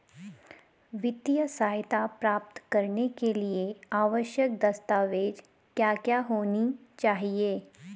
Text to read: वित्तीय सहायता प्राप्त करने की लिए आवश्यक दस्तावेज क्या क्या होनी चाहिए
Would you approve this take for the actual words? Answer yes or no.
no